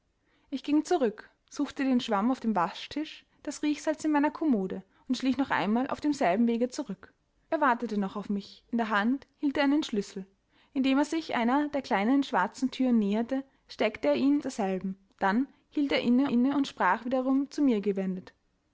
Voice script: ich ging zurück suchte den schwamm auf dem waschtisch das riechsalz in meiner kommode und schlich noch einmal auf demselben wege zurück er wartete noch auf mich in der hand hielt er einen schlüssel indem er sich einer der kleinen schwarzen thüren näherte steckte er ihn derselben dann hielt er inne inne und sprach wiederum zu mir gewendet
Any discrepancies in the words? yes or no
no